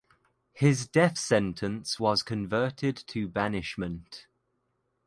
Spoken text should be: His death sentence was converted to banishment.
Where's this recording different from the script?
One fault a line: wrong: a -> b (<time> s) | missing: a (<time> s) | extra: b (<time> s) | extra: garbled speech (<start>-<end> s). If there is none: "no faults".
no faults